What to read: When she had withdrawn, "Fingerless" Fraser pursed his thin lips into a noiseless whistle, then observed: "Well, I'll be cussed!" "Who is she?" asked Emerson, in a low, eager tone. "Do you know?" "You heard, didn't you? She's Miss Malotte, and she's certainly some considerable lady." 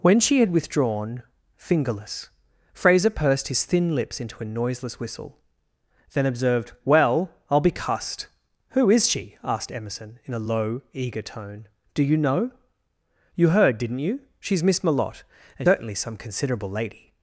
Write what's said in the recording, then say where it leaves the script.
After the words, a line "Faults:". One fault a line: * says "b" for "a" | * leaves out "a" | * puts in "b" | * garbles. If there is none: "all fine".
When she had withdrawn, "Fingerless" Fraser pursed his thin lips into a noiseless whistle, then observed: "Well, I'll be cussed!" "Who is she?" asked Emerson, in a low, eager tone. "Do you know?" "You heard, didn't you? She's Miss Malotte, and certainly some considerable lady."
Faults:
* leaves out "she's"